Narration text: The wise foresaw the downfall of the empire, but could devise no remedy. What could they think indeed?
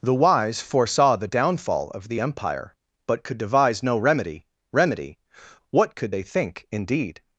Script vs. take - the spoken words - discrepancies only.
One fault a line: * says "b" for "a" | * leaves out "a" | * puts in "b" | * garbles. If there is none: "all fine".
* puts in "remedy"